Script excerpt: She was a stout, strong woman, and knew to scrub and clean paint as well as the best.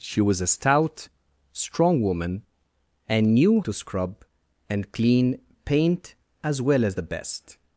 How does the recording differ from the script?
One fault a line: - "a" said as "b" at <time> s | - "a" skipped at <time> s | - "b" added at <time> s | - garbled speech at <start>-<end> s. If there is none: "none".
none